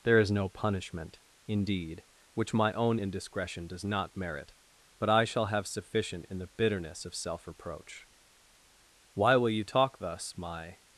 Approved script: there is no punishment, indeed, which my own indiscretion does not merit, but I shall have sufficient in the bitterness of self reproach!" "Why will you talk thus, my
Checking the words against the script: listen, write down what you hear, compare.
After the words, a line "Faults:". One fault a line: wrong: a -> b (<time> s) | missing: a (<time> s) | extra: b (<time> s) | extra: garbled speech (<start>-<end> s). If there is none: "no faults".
there is no punishment, indeed, which my own indiscretion does not merit, but I shall have sufficient in the bitterness of self reproach!" "Why will you talk thus, my
Faults:
no faults